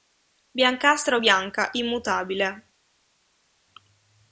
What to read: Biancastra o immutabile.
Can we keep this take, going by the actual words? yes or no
no